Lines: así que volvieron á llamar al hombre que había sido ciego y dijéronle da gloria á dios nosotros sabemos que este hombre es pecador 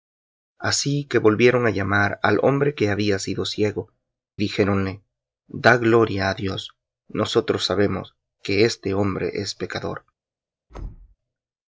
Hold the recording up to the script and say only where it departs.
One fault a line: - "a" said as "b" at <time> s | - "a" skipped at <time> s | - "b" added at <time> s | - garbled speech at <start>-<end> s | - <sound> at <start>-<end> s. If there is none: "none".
- "y" skipped at 3.9 s
- thud at 10.7-11.2 s